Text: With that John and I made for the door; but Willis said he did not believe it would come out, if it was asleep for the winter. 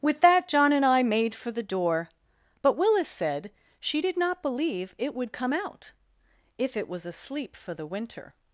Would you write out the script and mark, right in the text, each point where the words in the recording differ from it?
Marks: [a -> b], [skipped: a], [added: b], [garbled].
With that John and I made for the door; but Willis said [he -> she] did not believe it would come out, if it was asleep for the winter.